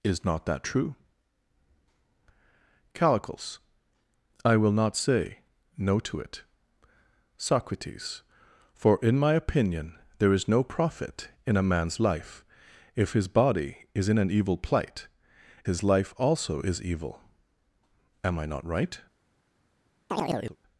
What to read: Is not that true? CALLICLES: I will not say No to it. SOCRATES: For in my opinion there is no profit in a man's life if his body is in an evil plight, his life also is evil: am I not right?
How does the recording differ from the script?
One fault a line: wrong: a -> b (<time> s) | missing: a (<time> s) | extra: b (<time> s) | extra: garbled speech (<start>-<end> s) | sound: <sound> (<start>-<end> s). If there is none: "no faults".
sound: chirp (20.1-20.6 s)